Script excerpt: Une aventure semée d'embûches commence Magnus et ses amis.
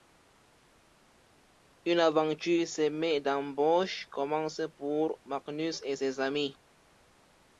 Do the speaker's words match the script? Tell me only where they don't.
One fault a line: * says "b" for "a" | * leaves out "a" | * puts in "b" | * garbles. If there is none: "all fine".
* puts in "pour"